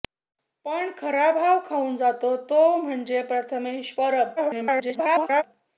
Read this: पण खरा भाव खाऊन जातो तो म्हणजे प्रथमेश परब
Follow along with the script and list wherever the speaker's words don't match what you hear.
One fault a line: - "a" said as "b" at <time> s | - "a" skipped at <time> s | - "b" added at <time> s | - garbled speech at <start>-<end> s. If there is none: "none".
- garbled speech at 4.4-5.4 s